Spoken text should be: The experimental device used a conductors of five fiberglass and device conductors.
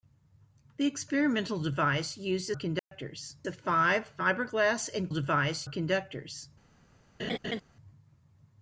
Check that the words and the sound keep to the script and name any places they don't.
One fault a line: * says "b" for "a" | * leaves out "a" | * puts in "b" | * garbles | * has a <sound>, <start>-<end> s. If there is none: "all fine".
* has a dropout, 2.8-2.9 s
* has a laugh, 7.2-7.6 s